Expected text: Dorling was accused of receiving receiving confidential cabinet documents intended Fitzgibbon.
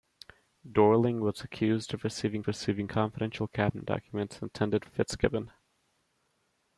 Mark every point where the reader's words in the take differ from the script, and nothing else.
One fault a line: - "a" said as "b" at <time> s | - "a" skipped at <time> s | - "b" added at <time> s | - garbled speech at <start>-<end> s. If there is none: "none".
none